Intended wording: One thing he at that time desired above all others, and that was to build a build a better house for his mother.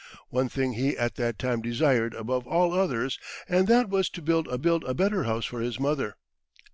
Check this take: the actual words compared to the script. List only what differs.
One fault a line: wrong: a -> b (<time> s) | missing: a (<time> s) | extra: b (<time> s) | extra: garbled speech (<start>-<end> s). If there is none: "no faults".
no faults